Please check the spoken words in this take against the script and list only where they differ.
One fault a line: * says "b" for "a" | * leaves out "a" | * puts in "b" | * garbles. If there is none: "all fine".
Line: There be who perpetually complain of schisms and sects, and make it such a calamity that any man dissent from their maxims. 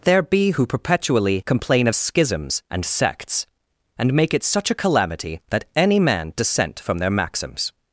all fine